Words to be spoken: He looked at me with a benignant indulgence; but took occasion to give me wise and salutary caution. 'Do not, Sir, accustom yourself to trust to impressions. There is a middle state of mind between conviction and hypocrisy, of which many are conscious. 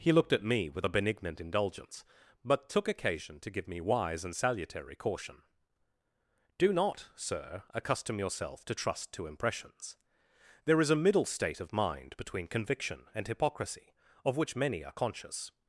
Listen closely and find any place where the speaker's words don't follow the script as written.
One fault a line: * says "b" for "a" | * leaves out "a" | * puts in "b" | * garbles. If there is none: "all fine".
all fine